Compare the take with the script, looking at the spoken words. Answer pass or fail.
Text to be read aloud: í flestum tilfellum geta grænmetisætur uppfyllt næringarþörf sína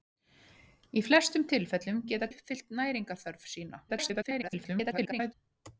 fail